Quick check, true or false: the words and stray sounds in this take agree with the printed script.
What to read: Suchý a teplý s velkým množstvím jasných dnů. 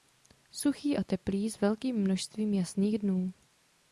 true